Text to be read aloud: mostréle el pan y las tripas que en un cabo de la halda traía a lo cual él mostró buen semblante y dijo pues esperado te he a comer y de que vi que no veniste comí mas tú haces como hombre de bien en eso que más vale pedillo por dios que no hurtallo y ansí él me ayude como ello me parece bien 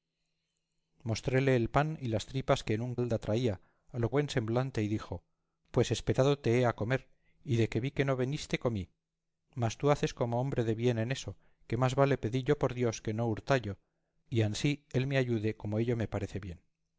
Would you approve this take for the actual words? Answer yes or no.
no